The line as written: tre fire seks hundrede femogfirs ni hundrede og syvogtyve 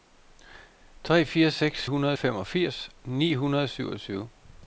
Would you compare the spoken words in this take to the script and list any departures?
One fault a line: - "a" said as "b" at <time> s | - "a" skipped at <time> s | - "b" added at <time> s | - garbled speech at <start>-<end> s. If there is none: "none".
none